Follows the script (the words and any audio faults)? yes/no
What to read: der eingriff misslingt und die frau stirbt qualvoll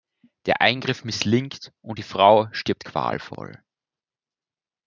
yes